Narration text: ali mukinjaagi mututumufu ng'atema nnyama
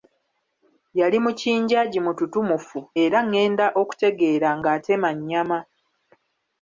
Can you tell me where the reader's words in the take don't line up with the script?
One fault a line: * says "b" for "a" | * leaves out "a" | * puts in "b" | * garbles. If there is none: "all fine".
* says "yali" for "ali"
* puts in "era ng'enda okutegeera"